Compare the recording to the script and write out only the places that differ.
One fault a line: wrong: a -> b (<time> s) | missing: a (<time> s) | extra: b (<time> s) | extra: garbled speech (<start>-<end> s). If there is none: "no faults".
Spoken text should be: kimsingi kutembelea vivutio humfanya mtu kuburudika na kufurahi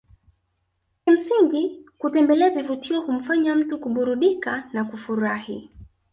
no faults